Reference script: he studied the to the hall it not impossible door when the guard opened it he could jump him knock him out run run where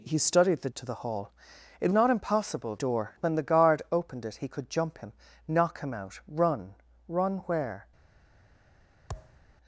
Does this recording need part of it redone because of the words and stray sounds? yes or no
yes